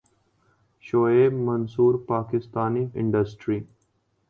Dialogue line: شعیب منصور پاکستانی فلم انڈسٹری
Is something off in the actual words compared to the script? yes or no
yes